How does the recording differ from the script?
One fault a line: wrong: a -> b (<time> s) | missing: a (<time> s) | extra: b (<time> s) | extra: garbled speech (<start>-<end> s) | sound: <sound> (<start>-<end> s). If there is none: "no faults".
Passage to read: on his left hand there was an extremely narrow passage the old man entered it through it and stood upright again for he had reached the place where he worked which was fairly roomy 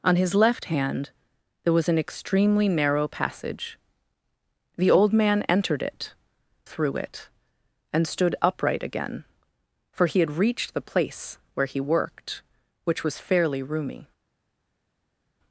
no faults